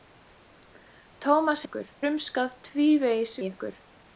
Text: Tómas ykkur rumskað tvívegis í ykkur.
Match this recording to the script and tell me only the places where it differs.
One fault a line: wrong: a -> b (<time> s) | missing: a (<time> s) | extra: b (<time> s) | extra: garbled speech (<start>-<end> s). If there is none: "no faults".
no faults